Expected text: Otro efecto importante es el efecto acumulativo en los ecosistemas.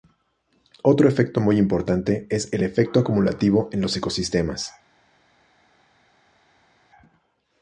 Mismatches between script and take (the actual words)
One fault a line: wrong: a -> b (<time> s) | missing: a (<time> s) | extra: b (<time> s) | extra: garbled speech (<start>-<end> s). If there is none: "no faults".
extra: muy (1.4 s)